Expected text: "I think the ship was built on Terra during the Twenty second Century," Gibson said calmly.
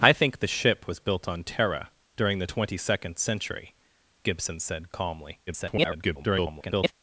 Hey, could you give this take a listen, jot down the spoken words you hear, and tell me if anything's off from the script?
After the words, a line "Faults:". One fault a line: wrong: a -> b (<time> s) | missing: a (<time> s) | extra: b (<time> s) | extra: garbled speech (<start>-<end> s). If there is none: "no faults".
"I think the ship was built on Terra during the Twenty second Century," Gibson said calmly. [garbled]
Faults:
extra: garbled speech (5.5-6.9 s)